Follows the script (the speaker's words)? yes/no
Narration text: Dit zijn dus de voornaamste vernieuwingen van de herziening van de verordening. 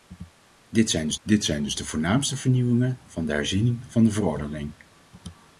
no